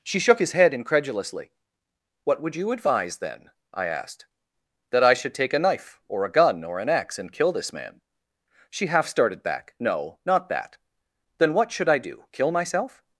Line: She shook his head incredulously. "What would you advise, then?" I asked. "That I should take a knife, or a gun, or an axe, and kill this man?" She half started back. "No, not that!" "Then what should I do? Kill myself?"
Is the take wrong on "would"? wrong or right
right